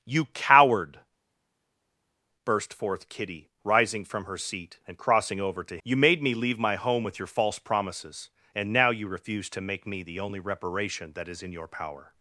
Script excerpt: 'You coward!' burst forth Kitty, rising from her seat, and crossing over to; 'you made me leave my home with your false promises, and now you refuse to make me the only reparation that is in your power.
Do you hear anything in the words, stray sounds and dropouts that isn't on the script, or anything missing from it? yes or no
no